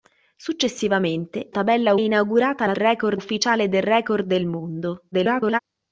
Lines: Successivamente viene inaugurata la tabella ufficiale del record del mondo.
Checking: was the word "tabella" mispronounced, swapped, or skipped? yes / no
yes